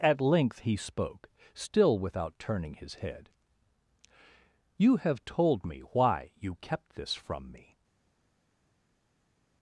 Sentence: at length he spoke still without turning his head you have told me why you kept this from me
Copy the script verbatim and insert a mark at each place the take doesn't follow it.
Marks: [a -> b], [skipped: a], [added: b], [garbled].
at length he spoke still without turning his head you have told me why you kept this from me